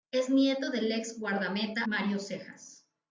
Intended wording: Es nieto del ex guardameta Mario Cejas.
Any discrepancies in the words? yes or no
no